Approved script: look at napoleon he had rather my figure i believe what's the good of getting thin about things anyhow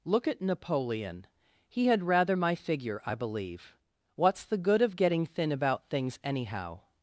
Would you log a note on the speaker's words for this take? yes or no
no